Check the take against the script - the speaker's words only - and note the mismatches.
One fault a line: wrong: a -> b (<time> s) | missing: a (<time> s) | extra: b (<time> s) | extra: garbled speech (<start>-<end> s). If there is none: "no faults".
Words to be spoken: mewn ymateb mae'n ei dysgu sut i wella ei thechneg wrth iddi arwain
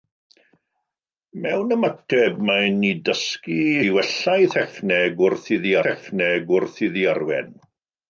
missing: sut (3.6 s)
extra: thechneg wrth iddi (5.9 s)